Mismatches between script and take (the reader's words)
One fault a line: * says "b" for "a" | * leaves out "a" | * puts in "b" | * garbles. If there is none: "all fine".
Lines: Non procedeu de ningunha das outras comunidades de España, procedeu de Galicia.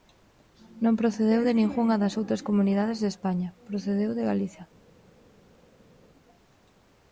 all fine